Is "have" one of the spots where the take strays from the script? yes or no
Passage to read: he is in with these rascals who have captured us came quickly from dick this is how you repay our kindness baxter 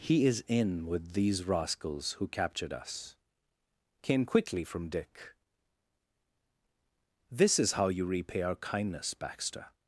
yes